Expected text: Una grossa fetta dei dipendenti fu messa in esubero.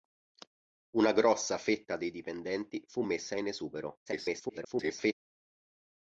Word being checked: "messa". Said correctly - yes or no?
yes